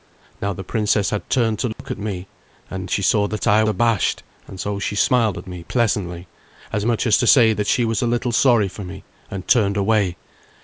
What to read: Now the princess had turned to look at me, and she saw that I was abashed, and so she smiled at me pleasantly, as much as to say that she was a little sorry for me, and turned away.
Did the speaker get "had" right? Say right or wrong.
right